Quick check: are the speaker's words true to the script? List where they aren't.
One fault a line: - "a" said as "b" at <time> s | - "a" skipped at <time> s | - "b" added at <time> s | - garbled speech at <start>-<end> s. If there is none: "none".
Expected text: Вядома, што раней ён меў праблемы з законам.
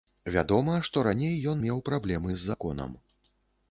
none